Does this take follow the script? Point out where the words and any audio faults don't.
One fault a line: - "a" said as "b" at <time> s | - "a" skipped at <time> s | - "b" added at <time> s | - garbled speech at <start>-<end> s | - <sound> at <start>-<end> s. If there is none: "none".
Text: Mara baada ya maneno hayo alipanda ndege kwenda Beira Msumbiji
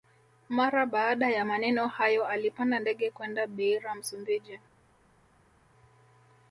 none